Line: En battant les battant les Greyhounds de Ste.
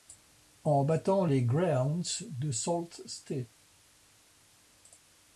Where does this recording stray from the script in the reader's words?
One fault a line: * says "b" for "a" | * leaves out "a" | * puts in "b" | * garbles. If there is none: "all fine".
* leaves out "battant les"
* puts in "Sault"